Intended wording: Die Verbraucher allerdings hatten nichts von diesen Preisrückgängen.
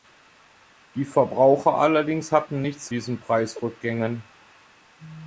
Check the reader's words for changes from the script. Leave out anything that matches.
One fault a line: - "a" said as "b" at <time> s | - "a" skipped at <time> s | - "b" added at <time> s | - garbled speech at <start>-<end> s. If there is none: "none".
- "von" skipped at 2.9 s